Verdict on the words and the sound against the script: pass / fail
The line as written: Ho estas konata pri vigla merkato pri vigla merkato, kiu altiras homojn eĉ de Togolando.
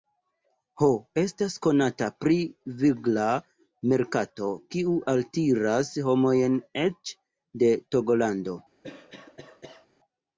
fail